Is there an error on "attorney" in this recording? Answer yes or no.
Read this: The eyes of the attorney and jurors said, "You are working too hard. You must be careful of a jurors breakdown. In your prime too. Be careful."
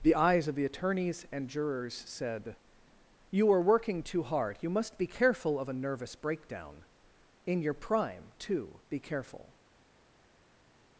yes